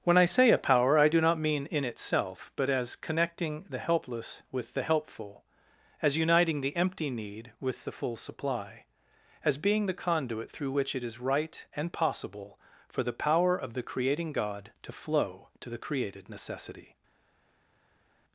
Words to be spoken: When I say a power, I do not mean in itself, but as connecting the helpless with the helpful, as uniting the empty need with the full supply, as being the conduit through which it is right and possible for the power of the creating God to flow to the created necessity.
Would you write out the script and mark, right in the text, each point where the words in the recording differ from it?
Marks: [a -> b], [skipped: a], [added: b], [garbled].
When I say a power, I do not mean in itself, but as connecting the helpless with the helpful, as uniting the empty need with the full supply, as being the conduit through which it is right and possible for the power of the creating God to flow to the created necessity.